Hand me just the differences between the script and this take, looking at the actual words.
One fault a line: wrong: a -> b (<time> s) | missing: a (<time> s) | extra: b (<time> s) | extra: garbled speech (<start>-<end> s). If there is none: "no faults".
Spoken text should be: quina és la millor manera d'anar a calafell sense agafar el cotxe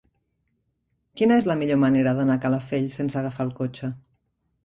no faults